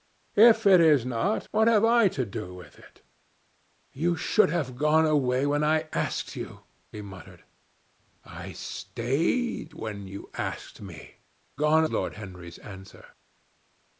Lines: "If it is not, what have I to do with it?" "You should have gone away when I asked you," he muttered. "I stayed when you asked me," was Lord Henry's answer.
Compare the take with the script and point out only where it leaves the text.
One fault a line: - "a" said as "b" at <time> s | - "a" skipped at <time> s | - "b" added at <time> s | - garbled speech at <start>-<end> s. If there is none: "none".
- "was" said as "gone" at 11.5 s